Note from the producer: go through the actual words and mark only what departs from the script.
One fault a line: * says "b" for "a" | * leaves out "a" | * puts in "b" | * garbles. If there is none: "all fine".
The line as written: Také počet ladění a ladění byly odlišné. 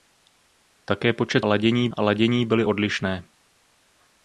all fine